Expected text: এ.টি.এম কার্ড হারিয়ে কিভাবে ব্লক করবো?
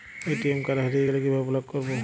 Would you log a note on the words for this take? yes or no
yes